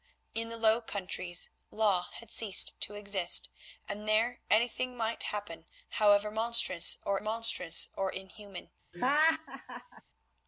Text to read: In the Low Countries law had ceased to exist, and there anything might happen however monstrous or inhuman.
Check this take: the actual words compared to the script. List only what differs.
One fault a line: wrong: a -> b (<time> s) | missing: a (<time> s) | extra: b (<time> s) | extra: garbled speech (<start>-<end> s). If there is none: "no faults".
extra: monstrous or (7.2 s)